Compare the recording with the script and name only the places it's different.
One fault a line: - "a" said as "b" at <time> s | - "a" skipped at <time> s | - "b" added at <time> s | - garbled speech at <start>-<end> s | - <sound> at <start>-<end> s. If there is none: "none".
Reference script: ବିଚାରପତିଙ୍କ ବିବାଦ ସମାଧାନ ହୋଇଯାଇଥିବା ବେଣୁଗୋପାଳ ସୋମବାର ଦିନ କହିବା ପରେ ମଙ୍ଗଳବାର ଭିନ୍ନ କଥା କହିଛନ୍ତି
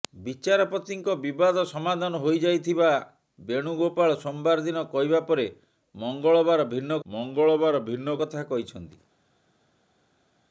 - "ମଙ୍ଗଳବାର ଭିନ୍ନ" added at 7.1 s